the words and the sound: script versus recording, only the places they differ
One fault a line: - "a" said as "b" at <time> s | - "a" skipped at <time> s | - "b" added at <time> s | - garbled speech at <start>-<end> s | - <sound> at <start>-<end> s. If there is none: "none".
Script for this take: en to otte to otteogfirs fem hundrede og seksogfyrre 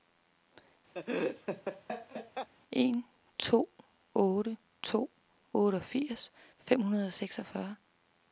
- laugh at 0.9-2.5 s